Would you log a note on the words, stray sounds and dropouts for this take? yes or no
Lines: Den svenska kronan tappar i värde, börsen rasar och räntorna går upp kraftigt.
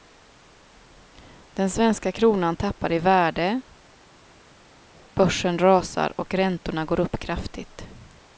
no